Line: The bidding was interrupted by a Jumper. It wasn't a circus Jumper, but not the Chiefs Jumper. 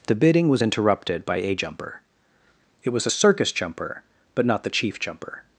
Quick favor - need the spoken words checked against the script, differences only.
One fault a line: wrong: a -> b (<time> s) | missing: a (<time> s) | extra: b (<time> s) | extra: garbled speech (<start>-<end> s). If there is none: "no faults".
wrong: wasn't -> was (2.9 s)
wrong: Chiefs -> Chief (4.7 s)